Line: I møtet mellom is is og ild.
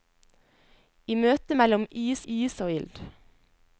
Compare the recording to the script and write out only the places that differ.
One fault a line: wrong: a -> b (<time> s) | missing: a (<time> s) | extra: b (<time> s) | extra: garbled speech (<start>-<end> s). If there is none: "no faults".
no faults